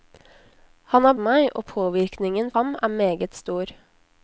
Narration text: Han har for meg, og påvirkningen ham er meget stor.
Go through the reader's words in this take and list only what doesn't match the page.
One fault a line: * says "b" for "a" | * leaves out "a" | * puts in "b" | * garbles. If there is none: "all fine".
all fine